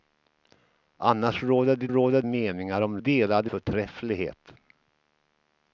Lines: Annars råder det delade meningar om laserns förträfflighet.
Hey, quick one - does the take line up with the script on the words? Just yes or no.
no